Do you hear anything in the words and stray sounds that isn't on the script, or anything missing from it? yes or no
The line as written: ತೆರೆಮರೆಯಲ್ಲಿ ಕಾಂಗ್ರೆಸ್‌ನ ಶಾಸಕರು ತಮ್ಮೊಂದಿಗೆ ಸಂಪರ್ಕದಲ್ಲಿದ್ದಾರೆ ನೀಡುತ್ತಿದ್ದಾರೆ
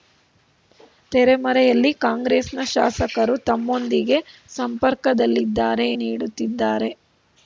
no